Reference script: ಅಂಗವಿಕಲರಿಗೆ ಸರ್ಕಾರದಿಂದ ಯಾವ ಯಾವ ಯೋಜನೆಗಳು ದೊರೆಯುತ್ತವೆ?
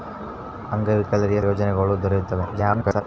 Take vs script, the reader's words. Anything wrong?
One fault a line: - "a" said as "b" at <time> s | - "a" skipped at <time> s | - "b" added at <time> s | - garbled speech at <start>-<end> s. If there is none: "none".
- "ಸರ್ಕಾರದಿಂದ ಯಾವ ಯಾವ" skipped at 1.4 s
- garbled speech at 2.5-3.0 s